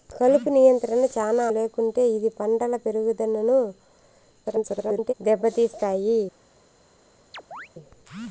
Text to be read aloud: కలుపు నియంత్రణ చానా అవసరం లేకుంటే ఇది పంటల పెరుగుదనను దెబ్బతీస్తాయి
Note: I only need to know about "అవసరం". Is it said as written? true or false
false